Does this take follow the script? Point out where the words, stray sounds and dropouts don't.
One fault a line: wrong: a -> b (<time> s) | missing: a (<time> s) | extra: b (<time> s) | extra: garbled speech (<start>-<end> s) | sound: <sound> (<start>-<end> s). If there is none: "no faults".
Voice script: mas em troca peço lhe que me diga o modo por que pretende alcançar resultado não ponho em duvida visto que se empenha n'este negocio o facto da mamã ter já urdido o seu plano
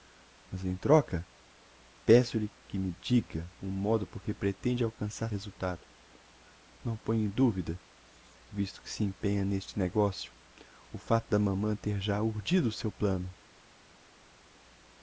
no faults